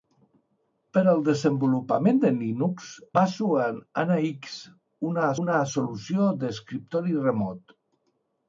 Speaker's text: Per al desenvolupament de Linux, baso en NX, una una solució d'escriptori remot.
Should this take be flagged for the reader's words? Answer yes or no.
no